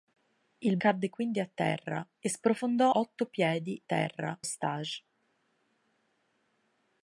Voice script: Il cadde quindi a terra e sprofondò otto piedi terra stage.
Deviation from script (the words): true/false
false